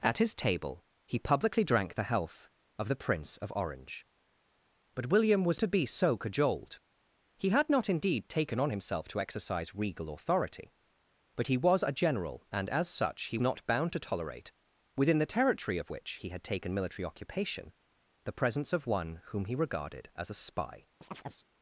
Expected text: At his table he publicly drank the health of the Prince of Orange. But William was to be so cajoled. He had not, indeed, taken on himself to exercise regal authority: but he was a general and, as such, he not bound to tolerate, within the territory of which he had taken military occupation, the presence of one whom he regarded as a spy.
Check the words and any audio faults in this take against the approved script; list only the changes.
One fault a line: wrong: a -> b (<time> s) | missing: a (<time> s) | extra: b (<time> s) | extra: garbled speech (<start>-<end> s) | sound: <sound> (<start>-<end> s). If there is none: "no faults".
sound: chirp (21.0-21.5 s)